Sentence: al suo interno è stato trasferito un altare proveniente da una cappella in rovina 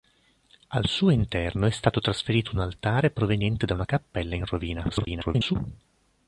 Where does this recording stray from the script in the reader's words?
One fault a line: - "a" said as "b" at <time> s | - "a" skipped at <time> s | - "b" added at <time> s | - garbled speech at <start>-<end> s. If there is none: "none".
- garbled speech at 4.9-5.6 s